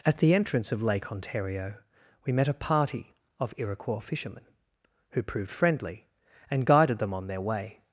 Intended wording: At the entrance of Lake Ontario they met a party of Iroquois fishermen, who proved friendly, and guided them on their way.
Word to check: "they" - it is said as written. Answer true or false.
false